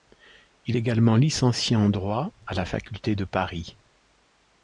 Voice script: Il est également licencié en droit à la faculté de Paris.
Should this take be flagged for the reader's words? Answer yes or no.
yes